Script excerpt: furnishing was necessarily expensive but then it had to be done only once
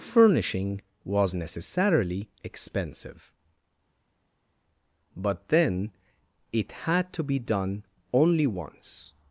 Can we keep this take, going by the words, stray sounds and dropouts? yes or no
yes